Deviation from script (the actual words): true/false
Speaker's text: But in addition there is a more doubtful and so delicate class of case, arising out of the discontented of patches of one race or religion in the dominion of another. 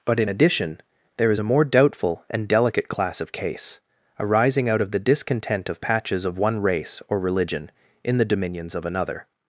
true